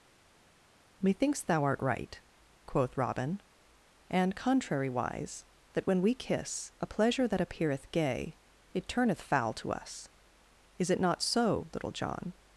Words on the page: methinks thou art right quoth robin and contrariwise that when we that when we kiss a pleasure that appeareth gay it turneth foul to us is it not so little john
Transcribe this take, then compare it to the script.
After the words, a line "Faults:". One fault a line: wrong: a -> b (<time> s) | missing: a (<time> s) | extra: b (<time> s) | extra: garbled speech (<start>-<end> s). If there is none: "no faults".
methinks thou art right quoth robin and contrariwise that when we kiss a pleasure that appeareth gay it turneth foul to us is it not so little john
Faults:
missing: that when we (6.1 s)